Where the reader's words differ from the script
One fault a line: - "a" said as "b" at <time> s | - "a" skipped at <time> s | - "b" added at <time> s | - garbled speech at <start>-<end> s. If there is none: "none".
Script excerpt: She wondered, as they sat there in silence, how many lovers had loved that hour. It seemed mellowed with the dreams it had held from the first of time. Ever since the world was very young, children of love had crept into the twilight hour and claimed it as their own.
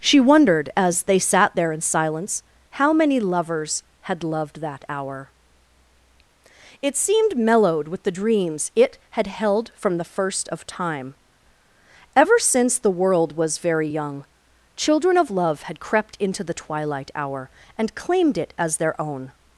none